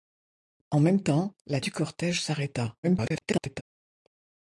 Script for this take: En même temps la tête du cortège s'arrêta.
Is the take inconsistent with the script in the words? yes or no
yes